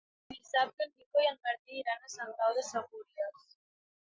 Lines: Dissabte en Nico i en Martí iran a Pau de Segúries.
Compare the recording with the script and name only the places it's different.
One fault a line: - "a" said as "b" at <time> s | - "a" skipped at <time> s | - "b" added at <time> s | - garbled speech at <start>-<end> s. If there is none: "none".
- "Sant" added at 2.1 s